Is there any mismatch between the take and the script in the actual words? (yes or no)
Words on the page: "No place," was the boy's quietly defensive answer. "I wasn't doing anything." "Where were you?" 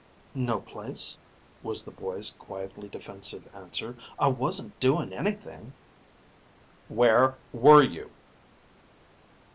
no